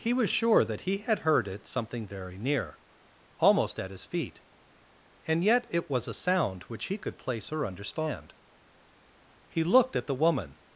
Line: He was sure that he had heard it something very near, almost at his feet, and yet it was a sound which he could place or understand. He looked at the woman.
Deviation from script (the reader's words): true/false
false